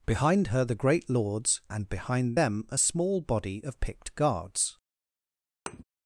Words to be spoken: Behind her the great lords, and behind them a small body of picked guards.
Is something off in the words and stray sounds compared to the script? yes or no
yes